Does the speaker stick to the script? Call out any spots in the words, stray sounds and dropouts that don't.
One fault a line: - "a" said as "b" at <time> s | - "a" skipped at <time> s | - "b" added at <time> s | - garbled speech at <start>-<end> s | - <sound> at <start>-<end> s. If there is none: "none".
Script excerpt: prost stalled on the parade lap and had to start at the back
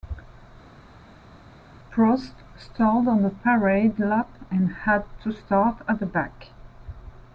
none